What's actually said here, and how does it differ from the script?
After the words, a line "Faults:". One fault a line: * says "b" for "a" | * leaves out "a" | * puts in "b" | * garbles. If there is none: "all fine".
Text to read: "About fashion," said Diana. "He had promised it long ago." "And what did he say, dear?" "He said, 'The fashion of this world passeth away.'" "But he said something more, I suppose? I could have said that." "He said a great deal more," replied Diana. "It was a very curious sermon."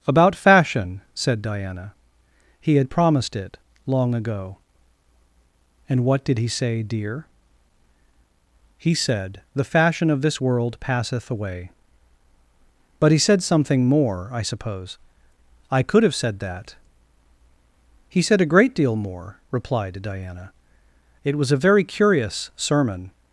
"About fashion," said Diana. "He had promised it long ago." "And what did he say, dear?" "He said, 'The fashion of this world passeth away.'" "But he said something more, I suppose? I could have said that." "He said a great deal more," replied Diana. "It was a very curious sermon."
Faults:
all fine